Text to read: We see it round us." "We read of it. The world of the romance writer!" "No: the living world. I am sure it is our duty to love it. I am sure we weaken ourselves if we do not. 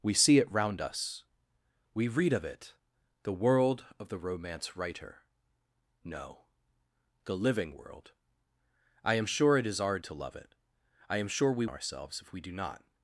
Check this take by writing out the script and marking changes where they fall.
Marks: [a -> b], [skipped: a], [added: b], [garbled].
We see it round us." "We read of it. The world of the romance writer!" "No: the living world. I am sure it is our [skipped: duty] to love it. I am sure we [skipped: weaken] ourselves if we do not.